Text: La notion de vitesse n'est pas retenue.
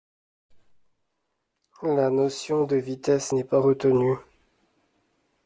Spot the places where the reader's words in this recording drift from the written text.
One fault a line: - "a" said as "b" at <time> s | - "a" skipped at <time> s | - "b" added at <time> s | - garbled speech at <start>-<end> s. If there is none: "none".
none